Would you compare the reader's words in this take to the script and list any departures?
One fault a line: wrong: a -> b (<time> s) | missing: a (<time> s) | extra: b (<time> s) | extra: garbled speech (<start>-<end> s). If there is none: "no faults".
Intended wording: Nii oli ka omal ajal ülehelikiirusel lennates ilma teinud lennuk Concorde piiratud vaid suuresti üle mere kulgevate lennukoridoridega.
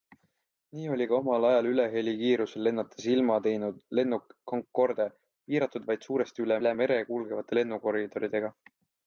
extra: üle (6.6 s)